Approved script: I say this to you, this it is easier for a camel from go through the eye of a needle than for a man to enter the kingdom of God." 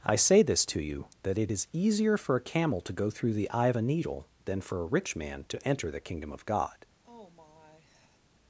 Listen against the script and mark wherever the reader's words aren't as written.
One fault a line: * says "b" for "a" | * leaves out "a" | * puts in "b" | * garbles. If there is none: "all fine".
* says "that" for "this"
* says "to" for "from"
* puts in "rich"